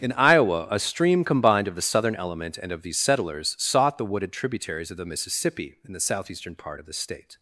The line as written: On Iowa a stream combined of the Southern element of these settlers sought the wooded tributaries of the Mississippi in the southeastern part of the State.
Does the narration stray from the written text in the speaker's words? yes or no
yes